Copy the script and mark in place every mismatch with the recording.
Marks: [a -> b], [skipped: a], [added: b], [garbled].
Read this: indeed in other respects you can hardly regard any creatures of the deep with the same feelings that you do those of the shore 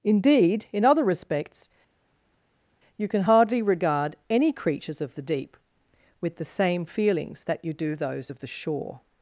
indeed in other respects you can hardly regard any creatures of the deep with the same feelings that you do those of the shore